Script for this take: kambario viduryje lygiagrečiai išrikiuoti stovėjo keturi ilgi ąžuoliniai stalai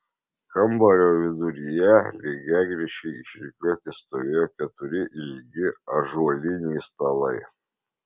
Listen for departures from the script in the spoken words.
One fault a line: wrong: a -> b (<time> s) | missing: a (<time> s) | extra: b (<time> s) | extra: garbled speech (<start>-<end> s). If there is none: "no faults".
no faults